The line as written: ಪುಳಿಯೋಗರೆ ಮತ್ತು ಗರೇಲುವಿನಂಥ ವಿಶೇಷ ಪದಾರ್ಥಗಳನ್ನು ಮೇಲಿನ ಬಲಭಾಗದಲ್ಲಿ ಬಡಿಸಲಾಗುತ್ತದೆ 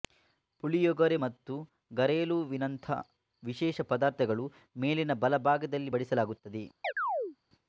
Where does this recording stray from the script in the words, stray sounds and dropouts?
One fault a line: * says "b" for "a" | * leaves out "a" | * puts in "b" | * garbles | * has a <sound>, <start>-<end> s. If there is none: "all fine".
* has a chirp, 6.8-7.4 s